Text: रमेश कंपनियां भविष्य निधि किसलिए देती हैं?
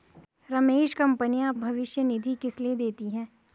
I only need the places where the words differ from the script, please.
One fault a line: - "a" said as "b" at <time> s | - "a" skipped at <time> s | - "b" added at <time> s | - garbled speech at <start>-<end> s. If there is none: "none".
none